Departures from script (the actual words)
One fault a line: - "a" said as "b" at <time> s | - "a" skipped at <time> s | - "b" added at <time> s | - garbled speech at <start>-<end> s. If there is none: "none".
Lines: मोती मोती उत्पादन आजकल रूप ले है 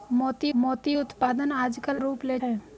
none